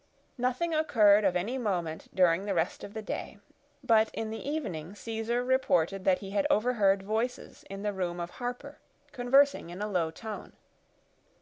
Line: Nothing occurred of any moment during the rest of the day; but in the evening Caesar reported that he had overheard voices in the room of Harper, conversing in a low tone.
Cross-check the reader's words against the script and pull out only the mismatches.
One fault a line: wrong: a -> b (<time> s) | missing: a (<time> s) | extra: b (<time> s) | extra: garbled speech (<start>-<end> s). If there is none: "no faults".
no faults